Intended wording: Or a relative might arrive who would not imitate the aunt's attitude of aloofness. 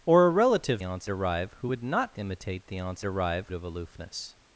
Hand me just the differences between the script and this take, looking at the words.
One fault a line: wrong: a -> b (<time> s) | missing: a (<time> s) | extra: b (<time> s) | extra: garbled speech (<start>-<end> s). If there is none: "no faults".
wrong: might -> aunt's (0.8 s)
wrong: attitude -> arrive (3.0 s)